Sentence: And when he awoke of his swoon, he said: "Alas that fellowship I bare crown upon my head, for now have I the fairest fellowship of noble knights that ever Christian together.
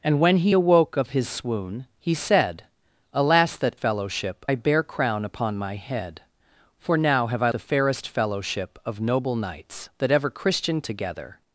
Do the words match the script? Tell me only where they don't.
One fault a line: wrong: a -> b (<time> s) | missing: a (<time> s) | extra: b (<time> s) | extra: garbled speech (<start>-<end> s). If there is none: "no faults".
no faults